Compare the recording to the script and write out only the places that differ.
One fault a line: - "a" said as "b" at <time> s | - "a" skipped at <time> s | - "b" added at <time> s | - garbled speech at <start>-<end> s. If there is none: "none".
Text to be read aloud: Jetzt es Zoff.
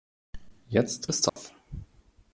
none